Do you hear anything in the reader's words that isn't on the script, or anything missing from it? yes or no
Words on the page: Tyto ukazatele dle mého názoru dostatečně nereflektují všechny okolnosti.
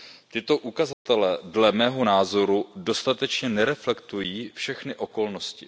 no